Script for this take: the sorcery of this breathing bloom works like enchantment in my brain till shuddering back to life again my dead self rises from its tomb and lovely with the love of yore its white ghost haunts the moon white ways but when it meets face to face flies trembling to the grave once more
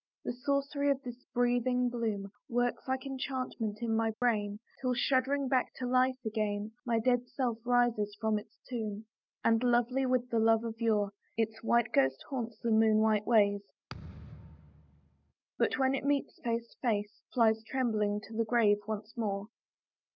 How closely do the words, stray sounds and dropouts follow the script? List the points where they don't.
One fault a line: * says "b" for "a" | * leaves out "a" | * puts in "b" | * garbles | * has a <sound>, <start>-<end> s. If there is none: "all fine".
* has a dropout, 4.1-4.2 s
* has a thud, 13.9-15.3 s